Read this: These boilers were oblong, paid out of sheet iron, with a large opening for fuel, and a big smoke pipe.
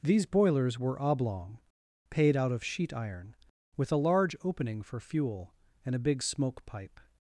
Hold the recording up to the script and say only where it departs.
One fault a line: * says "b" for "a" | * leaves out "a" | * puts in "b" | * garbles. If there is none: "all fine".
all fine